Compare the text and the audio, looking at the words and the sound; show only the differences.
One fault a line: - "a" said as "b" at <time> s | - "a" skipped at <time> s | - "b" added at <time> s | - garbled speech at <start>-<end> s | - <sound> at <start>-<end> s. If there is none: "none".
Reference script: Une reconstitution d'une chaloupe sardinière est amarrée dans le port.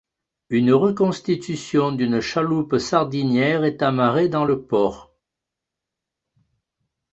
none